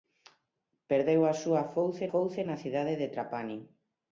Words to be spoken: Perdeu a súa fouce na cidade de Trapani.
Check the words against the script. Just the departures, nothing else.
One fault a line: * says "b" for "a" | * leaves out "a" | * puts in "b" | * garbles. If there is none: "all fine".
* puts in "fouce"